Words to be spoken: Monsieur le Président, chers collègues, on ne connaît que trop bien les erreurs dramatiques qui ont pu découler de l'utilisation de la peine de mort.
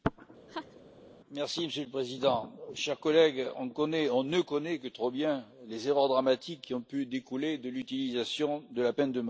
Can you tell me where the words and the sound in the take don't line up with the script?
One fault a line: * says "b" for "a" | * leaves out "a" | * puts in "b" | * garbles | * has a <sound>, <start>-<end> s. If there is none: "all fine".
* has a laugh, 0.5-0.8 s